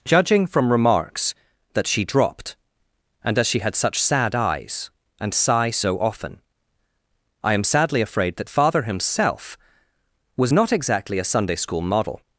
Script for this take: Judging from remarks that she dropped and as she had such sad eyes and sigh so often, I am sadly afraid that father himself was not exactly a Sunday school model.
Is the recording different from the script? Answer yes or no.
no